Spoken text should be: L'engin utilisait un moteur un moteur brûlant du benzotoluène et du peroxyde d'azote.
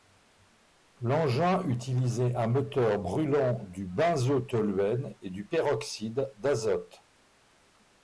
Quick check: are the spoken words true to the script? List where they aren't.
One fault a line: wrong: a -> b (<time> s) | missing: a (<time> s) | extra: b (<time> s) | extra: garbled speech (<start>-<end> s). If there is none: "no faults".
missing: un moteur (3.0 s)